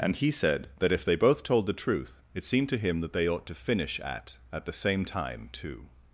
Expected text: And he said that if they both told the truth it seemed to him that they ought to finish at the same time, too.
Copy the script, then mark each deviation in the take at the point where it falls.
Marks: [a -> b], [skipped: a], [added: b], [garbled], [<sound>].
And he said that if they both told the truth it seemed to him that they ought to finish at [added: at] the same time, too.